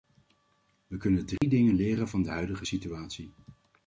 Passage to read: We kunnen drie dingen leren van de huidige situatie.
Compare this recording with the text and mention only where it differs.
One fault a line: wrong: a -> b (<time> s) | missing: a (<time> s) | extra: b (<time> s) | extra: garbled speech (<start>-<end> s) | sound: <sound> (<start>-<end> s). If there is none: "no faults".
sound: dropout (1.4-1.4 s)